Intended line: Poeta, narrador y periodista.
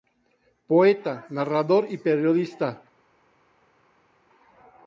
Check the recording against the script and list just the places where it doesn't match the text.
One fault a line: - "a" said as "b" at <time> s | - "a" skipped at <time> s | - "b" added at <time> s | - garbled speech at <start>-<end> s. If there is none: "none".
none